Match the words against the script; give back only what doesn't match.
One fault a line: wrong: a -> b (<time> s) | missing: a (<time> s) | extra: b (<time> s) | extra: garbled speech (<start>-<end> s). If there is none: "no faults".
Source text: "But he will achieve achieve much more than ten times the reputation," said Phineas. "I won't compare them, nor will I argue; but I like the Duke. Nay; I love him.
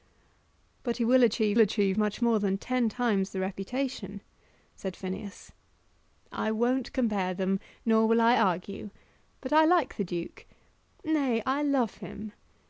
no faults